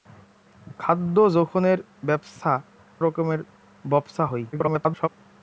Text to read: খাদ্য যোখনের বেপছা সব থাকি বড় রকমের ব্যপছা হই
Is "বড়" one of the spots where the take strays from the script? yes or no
yes